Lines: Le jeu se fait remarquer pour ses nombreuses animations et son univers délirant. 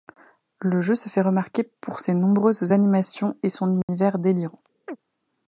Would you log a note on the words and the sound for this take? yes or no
yes